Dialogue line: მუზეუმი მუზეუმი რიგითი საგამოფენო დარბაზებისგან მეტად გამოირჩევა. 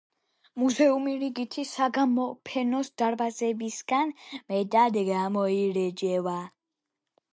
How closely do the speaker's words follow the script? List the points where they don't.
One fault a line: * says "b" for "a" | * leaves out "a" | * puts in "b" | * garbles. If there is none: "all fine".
* leaves out "მუზეუმი"